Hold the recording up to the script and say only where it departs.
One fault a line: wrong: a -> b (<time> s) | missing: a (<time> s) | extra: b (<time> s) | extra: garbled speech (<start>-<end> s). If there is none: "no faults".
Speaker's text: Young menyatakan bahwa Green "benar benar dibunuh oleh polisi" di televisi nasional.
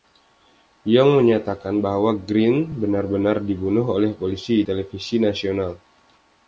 missing: di (4.7 s)